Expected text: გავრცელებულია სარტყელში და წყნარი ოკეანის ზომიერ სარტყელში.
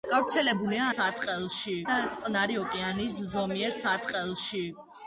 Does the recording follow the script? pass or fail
pass